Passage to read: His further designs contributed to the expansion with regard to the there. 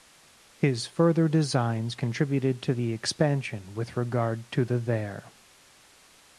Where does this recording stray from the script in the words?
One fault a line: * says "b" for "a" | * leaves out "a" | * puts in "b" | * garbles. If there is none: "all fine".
all fine